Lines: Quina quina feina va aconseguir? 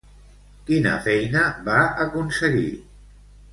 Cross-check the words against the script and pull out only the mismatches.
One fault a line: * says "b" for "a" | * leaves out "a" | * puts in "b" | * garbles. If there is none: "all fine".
* leaves out "quina"